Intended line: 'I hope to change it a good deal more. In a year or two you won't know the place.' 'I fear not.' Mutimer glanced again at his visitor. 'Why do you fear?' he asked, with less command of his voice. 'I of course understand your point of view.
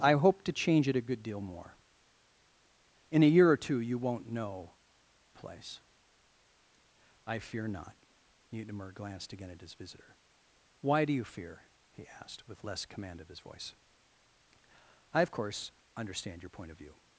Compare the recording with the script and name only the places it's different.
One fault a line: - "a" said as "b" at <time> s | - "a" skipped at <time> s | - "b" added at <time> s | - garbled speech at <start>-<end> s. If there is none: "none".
- "the" skipped at 4.7 s